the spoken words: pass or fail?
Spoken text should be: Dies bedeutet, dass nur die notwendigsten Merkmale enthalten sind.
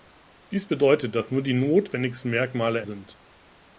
fail